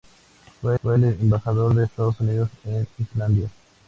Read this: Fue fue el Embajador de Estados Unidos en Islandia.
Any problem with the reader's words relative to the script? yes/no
no